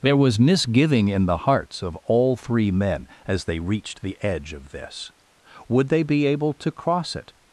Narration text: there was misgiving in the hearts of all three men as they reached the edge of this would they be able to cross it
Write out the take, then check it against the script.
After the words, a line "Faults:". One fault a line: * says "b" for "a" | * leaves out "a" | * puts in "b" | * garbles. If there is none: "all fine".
there was misgiving in the hearts of all three men as they reached the edge of this would they be able to cross it
Faults:
all fine